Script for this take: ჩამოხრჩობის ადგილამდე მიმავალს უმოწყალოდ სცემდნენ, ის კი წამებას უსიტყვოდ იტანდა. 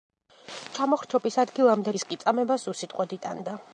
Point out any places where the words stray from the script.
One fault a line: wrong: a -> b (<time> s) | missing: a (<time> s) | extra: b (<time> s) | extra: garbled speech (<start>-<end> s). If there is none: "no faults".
missing: მიმავალს უმოწყალოდ სცემდნენ (1.9 s)